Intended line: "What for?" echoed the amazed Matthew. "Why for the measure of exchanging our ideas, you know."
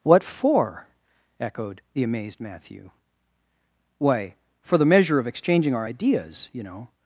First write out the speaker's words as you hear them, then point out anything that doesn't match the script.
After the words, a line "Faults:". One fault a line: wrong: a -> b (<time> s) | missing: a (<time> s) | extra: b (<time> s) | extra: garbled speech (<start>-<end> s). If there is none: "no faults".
"What for?" echoed the amazed Matthew. "Why for the measure of exchanging our ideas, you know."
Faults:
no faults